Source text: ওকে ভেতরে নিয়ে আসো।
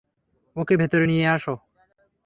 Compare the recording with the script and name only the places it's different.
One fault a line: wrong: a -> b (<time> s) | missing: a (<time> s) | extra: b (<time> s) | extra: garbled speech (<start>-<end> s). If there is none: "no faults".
no faults